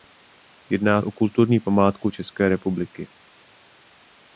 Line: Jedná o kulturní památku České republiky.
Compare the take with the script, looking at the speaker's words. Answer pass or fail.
pass